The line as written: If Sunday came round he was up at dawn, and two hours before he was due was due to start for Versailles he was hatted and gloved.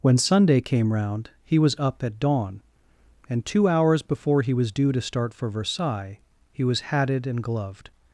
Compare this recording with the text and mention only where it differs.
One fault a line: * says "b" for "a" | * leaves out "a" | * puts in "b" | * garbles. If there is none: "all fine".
* says "When" for "If"
* leaves out "was due"